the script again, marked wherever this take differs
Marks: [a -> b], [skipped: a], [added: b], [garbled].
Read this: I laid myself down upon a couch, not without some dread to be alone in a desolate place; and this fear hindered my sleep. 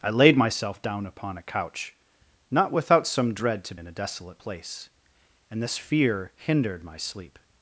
I laid myself down upon a couch, not without some dread to [skipped: be alone] in a desolate place; and this fear hindered my sleep.